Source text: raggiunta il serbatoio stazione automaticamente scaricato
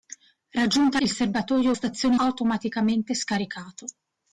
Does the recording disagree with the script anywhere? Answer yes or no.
no